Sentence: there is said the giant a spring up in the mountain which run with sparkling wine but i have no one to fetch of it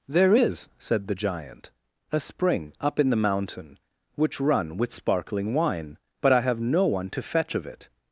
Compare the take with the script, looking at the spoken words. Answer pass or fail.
pass